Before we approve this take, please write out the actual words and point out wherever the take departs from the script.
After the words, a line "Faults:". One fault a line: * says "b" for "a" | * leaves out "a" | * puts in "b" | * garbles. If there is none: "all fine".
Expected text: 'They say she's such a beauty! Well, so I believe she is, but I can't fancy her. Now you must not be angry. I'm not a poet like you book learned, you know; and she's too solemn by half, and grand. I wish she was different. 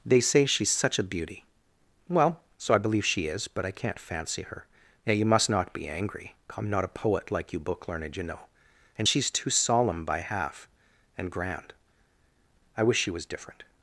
'They say she's such a beauty! Well, so I believe she is, but I can't fancy her. Now you must not be angry. I'm not a poet like you book learned, you know; and she's too solemn by half, and grand. I wish she was different.
Faults:
all fine